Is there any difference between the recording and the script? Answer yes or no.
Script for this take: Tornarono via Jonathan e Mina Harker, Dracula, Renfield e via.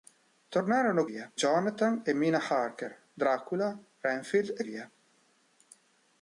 no